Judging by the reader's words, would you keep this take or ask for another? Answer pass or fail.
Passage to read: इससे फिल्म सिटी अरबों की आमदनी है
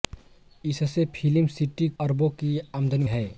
pass